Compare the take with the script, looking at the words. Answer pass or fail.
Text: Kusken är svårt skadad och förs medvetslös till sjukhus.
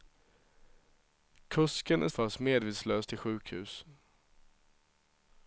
fail